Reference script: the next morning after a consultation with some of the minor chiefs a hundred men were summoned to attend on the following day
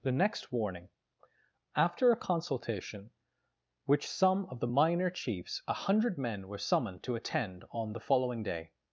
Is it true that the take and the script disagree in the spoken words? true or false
true